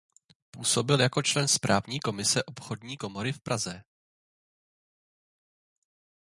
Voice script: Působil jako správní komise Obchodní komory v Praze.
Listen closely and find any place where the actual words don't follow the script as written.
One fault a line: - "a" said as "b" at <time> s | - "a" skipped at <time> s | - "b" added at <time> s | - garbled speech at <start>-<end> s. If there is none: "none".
- "člen" added at 1.2 s